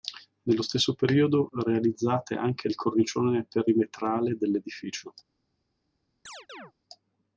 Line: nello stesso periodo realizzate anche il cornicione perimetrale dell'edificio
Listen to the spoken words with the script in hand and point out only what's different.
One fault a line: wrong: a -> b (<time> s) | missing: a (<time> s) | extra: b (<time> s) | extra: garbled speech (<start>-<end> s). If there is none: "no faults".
no faults